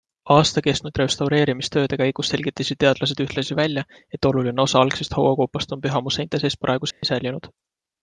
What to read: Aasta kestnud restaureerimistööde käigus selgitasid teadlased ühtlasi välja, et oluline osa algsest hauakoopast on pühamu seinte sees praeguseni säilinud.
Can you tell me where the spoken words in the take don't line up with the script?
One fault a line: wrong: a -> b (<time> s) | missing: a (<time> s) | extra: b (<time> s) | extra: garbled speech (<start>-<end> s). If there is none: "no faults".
no faults